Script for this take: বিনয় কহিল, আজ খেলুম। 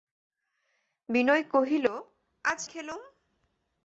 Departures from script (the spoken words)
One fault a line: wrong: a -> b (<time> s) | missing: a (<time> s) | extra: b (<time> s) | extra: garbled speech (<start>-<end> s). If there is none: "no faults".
no faults